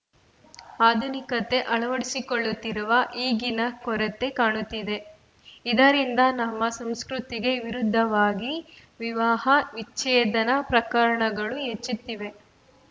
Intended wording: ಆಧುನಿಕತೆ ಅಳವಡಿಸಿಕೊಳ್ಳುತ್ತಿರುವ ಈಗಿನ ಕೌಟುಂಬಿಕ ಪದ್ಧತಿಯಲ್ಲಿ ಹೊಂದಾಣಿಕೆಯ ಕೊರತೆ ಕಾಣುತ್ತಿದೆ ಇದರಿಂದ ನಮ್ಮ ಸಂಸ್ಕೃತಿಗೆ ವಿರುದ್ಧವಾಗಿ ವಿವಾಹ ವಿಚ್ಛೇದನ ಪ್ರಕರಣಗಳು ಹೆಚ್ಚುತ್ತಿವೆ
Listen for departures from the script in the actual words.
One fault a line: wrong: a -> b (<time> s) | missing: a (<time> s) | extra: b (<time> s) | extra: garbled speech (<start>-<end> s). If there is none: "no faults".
missing: ಕೌಟುಂಬಿಕ ಪದ್ಧತಿಯಲ್ಲಿ ಹೊಂದಾಣಿಕೆಯ (3.6 s)